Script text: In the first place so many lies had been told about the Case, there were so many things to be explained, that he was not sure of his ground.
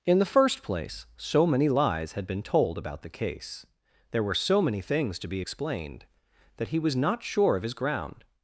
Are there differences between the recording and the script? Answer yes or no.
no